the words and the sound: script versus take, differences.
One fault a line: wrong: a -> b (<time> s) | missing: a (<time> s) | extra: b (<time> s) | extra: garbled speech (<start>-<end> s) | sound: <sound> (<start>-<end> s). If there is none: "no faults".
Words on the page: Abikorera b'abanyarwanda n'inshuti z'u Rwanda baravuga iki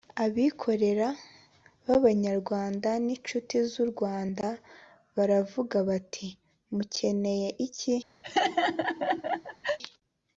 extra: bati mukeneye (5.9 s)
sound: laugh (8.2-9.8 s)